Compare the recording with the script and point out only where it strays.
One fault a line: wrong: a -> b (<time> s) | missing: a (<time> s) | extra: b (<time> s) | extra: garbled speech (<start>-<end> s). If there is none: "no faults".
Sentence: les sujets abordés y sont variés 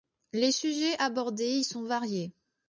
no faults